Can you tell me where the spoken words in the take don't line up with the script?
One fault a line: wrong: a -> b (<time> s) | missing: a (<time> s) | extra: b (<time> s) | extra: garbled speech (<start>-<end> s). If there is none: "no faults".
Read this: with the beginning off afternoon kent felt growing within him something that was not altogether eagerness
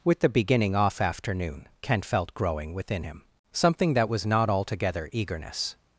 no faults